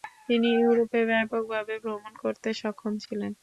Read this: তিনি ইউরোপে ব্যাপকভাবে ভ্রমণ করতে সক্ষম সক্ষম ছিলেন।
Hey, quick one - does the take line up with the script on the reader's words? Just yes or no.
no